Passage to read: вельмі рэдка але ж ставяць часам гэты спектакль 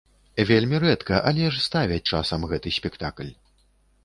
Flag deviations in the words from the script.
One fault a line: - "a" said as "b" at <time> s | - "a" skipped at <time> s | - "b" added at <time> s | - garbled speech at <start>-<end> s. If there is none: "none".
none